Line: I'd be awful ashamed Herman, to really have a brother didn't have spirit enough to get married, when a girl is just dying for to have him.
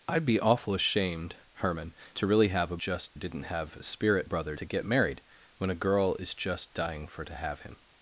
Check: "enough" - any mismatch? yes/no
yes